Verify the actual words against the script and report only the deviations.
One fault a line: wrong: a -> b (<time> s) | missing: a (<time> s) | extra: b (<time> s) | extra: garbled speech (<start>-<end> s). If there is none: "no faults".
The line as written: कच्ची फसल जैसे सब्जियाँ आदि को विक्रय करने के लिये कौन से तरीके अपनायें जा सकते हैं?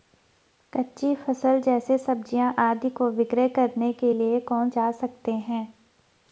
missing: से तरीके अपनायें (4.7 s)